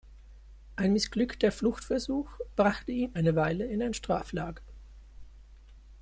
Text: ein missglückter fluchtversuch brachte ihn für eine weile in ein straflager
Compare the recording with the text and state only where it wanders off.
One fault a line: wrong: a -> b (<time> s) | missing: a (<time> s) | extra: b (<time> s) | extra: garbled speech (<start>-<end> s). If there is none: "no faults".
missing: für (3.1 s)